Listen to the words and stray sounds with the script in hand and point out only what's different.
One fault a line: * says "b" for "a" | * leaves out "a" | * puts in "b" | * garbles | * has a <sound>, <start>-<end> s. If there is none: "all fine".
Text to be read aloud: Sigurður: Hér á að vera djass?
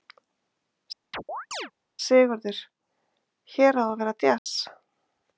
* has a chirp, 1.1-1.7 s
* has a dropout, 4.4-4.5 s